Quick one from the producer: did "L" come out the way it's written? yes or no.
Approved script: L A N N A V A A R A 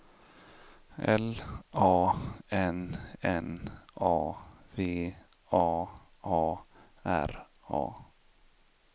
yes